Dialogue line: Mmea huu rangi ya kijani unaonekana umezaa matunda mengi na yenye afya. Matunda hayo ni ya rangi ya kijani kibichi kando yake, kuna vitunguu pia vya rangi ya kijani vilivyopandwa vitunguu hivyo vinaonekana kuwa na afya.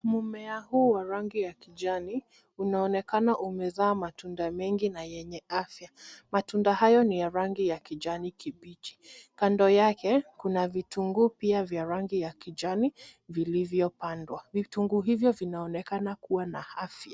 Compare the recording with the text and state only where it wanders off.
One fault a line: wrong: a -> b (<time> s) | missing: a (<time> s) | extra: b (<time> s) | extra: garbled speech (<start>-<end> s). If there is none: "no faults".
extra: wa (0.9 s)